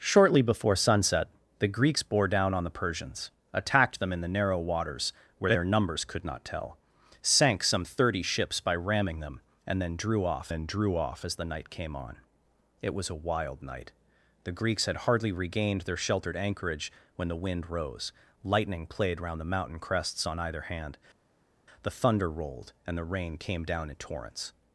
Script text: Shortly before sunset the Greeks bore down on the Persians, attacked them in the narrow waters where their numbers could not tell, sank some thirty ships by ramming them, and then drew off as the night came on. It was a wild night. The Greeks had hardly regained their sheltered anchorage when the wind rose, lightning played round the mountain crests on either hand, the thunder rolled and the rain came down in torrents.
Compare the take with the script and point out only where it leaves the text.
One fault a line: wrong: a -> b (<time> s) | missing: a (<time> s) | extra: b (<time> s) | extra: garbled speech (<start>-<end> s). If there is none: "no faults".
extra: then drew off (10.5 s)